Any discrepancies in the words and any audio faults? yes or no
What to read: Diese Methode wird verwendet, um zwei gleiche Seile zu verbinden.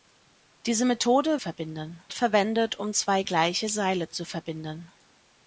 yes